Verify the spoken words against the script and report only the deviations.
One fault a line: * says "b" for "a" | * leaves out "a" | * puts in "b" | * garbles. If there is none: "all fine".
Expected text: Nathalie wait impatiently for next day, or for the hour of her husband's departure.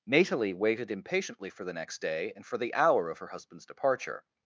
* says "waited" for "wait"
* puts in "the"
* says "and" for "or"